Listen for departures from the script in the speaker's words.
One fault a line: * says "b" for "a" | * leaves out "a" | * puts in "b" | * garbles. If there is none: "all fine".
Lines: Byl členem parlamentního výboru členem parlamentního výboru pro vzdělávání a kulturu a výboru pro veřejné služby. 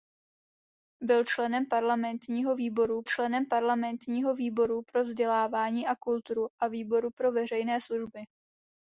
all fine